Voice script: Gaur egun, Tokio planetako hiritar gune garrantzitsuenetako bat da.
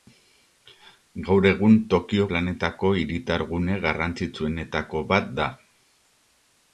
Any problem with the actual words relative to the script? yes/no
no